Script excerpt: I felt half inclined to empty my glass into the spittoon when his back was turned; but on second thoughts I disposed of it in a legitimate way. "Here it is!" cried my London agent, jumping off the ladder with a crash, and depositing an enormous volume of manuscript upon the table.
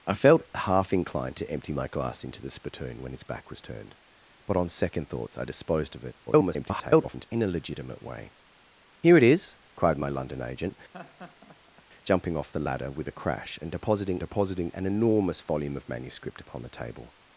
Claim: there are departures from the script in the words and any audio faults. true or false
true